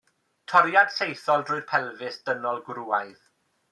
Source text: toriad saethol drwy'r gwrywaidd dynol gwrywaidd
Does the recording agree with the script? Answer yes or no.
no